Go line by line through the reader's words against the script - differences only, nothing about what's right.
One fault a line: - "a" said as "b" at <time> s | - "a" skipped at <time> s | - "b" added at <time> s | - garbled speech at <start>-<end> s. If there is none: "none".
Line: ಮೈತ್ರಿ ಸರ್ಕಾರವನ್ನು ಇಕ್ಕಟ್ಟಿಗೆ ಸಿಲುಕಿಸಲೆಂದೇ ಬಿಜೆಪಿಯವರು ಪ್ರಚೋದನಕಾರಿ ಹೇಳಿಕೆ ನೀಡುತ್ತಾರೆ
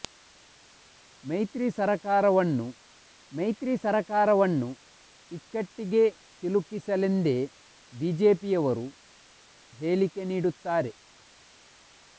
- "ಮೈತ್ರಿ ಸರ್ಕಾರವನ್ನು" added at 3.3 s
- "ಪ್ರಚೋದನಕಾರಿ" skipped at 8.9 s